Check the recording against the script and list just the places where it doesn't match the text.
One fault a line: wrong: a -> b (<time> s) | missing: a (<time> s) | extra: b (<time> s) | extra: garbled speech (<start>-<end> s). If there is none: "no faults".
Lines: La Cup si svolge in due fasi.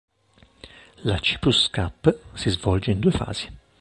extra: Cyprus (1.2 s)